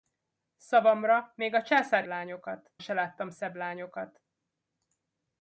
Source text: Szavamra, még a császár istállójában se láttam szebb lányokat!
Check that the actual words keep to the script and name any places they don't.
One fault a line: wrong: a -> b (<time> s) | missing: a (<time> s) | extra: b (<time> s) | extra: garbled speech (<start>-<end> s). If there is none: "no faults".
wrong: istállójában -> lányokat (2.0 s)